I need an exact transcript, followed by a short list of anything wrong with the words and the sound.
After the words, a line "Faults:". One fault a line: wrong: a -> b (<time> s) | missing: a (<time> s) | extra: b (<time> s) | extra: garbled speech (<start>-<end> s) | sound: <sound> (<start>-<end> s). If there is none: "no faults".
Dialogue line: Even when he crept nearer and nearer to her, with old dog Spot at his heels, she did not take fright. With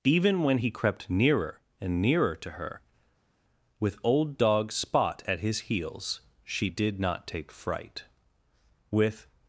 Even when he crept nearer and nearer to her, with old dog Spot at his heels, she did not take fright. With
Faults:
no faults